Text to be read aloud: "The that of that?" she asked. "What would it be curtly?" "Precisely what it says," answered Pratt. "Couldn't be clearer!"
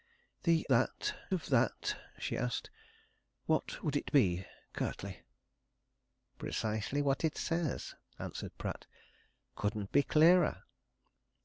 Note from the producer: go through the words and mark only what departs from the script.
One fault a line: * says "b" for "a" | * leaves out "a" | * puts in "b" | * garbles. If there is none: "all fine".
all fine